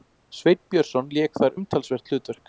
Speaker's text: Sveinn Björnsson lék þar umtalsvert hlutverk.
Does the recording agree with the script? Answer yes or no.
yes